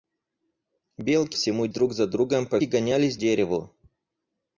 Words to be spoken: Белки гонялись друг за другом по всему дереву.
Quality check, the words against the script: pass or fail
fail